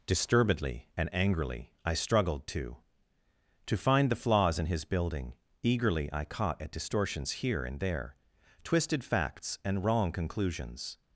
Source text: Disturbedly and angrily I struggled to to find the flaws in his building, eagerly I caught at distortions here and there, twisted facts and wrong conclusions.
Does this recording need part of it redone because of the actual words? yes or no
no